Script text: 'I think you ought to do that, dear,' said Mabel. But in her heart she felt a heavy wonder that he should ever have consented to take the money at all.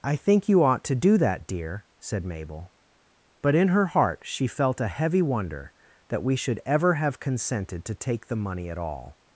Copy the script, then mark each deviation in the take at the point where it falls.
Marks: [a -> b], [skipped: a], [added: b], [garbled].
'I think you ought to do that, dear,' said Mabel. But in her heart she felt a heavy wonder that [he -> we] should ever have consented to take the money at all.